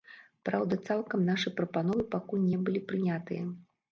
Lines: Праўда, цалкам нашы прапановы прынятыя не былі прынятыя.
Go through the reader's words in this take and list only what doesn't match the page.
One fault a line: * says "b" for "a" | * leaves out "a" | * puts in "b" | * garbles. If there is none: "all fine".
* says "пакуль" for "прынятыя"